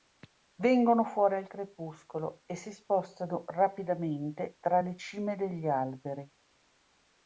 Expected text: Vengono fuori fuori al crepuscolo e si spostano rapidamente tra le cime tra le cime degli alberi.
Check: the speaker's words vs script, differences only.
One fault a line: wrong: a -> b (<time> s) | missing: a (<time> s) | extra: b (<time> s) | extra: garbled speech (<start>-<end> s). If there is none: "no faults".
missing: fuori (1.4 s)
missing: tra le cime (5.4 s)